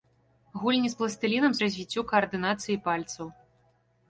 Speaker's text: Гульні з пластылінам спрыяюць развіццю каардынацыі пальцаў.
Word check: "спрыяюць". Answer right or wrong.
wrong